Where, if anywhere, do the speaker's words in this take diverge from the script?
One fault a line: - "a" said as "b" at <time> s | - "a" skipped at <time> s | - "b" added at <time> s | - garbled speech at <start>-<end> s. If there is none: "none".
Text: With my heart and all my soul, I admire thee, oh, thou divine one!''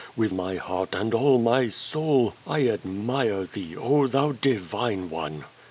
none